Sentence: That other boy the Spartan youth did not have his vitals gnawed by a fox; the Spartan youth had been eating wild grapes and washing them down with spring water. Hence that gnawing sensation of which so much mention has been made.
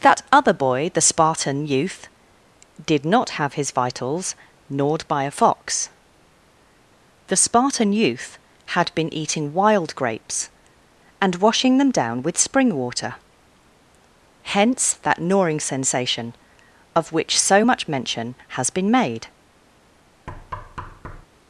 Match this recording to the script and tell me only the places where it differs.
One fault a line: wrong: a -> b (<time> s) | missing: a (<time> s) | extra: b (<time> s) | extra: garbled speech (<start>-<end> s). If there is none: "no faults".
no faults